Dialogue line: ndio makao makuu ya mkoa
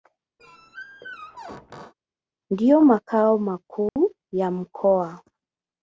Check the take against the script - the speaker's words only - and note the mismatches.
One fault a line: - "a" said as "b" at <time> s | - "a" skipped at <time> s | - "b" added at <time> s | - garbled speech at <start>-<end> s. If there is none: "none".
none